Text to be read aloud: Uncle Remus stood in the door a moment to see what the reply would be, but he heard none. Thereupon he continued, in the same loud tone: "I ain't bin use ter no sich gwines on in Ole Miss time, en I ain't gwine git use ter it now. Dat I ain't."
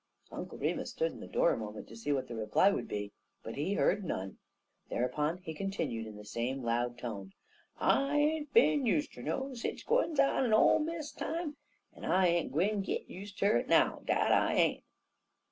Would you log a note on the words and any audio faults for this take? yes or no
no